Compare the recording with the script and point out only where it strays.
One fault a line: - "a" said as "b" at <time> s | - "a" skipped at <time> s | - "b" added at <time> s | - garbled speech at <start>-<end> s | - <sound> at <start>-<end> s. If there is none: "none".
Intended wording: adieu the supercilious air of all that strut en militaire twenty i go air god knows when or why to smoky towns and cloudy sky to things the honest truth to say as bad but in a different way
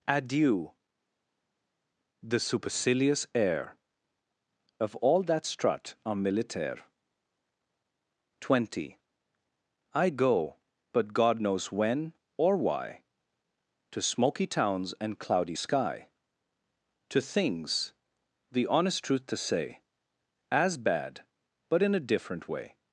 - "air" said as "but" at 10.9 s